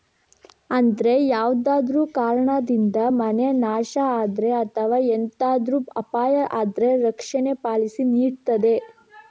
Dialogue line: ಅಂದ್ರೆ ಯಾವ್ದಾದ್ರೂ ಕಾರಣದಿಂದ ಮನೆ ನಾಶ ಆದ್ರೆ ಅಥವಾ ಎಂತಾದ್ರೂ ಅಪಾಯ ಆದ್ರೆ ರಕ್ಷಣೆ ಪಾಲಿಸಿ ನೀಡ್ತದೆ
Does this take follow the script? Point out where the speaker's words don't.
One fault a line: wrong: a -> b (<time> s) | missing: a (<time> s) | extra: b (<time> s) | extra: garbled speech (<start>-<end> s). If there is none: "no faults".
no faults